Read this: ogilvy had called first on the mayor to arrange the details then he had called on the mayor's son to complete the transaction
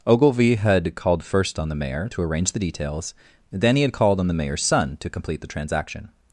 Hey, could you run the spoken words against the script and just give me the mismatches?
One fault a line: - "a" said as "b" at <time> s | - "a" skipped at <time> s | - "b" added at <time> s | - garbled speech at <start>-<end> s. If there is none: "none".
none